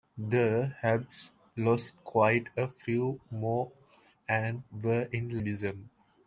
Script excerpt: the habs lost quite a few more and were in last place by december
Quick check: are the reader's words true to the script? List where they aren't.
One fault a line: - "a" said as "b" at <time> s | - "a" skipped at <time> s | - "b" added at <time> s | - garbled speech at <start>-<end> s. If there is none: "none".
- "last place by" skipped at 5.4 s